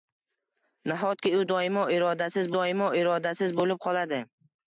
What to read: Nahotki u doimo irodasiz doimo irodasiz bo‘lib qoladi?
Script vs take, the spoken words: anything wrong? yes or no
no